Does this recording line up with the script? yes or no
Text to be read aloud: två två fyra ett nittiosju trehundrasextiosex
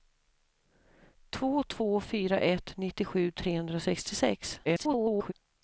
no